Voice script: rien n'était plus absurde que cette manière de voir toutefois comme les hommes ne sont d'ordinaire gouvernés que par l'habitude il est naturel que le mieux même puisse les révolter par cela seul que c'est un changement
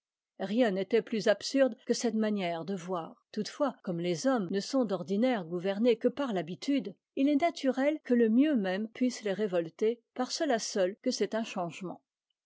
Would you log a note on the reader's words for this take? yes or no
no